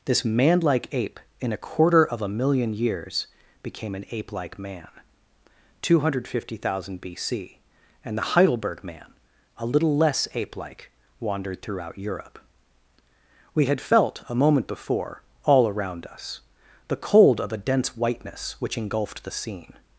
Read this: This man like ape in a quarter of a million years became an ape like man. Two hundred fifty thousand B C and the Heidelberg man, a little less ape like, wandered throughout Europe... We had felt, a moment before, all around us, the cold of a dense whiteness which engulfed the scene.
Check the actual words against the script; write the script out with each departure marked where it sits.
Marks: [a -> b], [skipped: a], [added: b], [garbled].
This man like ape in a quarter of a million years became an ape like man. Two hundred fifty thousand B C and the Heidelberg man, a little less ape like, wandered throughout Europe... We had felt, a moment before, all around us, the cold of a dense whiteness which engulfed the scene.